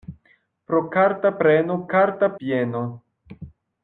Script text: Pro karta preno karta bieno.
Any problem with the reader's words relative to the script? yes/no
no